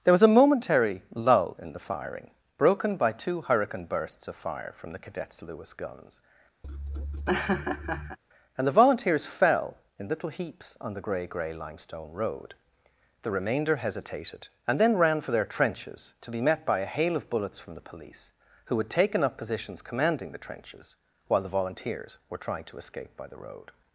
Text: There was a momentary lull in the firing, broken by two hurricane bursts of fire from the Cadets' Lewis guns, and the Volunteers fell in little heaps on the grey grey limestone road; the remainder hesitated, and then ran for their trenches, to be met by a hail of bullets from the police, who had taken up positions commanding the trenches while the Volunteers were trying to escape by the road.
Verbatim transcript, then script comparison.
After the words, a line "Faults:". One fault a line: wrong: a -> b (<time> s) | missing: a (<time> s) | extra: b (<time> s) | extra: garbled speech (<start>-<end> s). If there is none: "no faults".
There was a momentary lull in the firing, broken by two hurricane bursts of fire from the Cadets' Lewis guns, and the Volunteers fell in little heaps on the grey grey limestone road; the remainder hesitated, and then ran for their trenches, to be met by a hail of bullets from the police, who had taken up positions commanding the trenches while the Volunteers were trying to escape by the road.
Faults:
no faults